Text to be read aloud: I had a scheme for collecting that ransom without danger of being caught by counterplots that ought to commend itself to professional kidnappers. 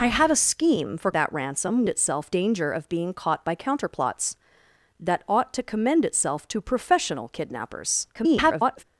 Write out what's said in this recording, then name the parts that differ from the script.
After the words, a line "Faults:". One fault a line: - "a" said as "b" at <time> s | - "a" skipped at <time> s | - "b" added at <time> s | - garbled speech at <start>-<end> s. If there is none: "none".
I had a scheme for that ransom itself danger of being caught by counterplots that ought to commend itself to professional kidnappers. [garbled]
Faults:
- "collecting" skipped at 1.1 s
- "without" said as "itself" at 1.9 s
- garbled speech at 8.1-8.8 s